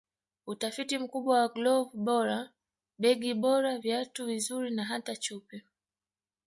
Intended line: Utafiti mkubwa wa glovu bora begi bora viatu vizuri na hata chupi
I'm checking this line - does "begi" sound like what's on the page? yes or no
yes